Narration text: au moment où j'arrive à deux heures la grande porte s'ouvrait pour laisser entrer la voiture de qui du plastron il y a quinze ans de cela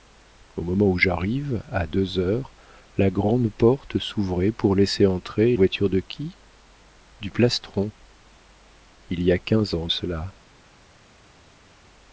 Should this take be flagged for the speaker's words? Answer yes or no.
yes